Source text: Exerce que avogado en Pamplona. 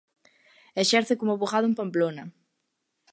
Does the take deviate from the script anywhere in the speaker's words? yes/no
yes